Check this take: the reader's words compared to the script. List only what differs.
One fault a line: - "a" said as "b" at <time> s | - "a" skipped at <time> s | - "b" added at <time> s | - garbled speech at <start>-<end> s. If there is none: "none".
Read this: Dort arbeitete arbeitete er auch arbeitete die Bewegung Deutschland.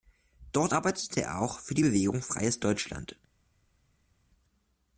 - "arbeitete" skipped at 1.2 s
- "arbeitete" said as "für" at 1.6 s
- "Freies" added at 2.2 s